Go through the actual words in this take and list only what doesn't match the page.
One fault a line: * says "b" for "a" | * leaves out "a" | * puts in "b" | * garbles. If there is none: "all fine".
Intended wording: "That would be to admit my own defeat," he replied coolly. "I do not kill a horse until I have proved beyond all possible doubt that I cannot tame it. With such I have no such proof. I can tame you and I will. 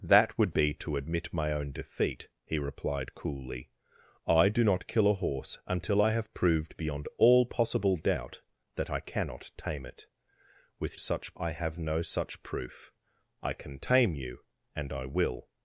all fine